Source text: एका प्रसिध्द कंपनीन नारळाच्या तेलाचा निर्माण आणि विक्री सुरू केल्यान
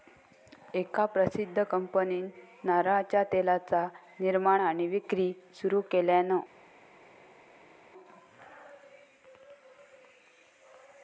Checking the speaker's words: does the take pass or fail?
pass